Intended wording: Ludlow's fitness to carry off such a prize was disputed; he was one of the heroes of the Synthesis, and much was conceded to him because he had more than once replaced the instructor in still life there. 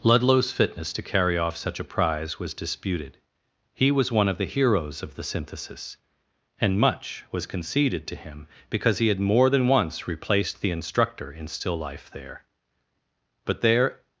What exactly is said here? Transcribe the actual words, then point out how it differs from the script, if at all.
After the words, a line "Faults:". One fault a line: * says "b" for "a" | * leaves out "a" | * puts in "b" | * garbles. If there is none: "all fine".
Ludlow's fitness to carry off such a prize was disputed; he was one of the heroes of the Synthesis, and much was conceded to him because he had more than once replaced the instructor in still life there. But there
Faults:
* puts in "But there"